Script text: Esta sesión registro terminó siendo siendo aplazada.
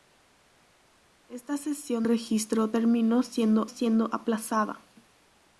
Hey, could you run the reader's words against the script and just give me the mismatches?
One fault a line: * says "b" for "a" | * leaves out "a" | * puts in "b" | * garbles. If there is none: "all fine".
all fine